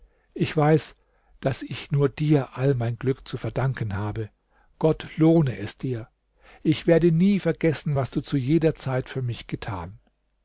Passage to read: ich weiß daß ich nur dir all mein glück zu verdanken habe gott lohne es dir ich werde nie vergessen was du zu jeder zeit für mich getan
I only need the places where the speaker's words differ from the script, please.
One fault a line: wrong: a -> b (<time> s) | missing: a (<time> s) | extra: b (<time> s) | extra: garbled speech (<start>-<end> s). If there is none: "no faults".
no faults